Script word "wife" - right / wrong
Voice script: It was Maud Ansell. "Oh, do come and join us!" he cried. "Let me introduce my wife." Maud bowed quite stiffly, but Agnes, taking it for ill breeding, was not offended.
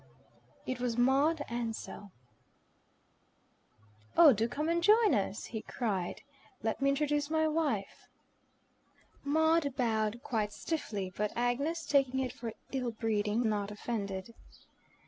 right